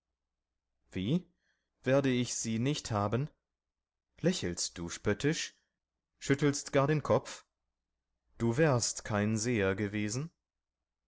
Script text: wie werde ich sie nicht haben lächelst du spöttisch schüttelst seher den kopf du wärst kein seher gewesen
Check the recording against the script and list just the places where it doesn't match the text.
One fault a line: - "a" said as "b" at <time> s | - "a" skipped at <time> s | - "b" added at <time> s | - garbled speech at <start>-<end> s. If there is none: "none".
- "seher" said as "gar" at 6.7 s